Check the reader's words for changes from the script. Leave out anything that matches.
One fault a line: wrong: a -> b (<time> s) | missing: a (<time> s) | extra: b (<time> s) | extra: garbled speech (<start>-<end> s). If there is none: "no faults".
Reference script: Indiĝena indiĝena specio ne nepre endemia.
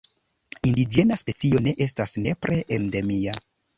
missing: indiĝena (1.2 s)
extra: estas (1.9 s)